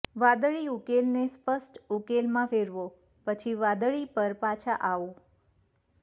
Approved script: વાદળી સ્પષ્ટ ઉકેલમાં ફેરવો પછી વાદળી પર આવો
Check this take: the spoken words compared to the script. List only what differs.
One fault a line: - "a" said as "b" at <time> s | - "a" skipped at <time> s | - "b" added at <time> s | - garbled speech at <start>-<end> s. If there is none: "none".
- "ઉકેલને" added at 0.7 s
- "પાછા" added at 4.4 s